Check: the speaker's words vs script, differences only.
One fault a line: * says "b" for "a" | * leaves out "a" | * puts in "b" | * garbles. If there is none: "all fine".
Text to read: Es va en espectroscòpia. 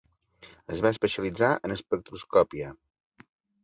* puts in "especialitzar"